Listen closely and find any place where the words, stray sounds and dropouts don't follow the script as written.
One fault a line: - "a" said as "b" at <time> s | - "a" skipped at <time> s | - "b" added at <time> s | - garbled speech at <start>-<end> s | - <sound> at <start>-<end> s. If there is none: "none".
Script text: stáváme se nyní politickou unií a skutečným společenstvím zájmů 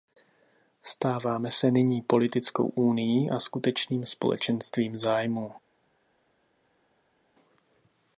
none